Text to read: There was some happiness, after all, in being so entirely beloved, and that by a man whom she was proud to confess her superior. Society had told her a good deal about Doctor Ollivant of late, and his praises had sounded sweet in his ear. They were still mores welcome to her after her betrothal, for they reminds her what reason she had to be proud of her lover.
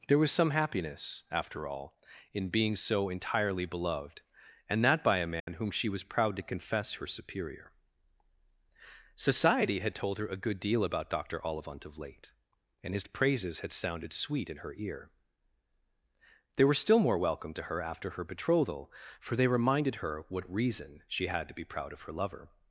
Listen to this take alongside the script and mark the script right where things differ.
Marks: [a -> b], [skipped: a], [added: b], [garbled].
There was some happiness, after all, in being so entirely beloved, and that by a man whom she was proud to confess her superior. Society had told her a good deal about Doctor Ollivant of late, and his praises had sounded sweet in [his -> her] ear. They were still [mores -> more] welcome to her after her betrothal, for they [reminds -> reminded] her what reason she had to be proud of her lover.